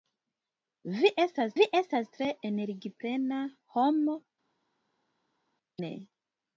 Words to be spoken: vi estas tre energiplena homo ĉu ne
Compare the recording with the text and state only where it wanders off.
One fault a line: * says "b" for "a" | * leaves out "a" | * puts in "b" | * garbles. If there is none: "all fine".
* puts in "vi estas"
* leaves out "ĉu"